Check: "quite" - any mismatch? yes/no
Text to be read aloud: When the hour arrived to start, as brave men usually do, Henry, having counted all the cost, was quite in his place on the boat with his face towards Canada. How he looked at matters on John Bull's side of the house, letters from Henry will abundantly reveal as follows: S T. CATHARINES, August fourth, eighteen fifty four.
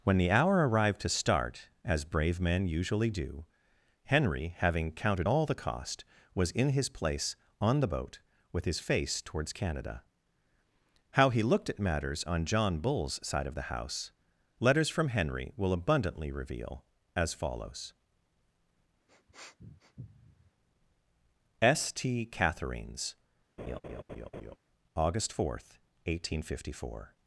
yes